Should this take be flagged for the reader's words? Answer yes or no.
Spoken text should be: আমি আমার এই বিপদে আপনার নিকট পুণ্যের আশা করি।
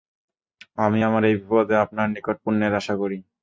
no